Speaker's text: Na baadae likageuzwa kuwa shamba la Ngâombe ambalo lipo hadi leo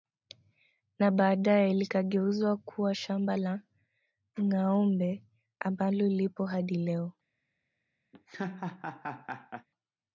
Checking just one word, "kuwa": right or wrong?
right